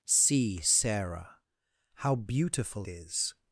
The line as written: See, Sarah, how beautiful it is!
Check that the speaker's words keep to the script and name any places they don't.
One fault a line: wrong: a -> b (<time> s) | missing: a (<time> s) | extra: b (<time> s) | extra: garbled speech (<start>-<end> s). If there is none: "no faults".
missing: it (2.9 s)